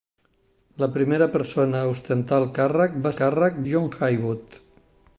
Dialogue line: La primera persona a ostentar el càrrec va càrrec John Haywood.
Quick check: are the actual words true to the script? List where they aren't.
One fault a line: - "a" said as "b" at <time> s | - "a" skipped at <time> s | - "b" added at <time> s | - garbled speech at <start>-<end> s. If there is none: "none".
none